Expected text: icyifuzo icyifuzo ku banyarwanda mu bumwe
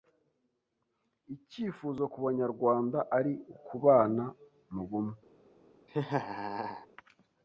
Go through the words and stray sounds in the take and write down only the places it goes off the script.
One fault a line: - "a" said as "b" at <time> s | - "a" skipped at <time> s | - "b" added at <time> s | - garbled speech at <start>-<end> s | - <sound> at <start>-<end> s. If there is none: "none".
- "icyifuzo" skipped at 2.0 s
- "ari ukubana" added at 3.2 s
- laugh at 5.9-6.9 s